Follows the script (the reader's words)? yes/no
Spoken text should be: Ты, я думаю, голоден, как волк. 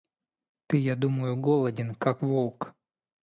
yes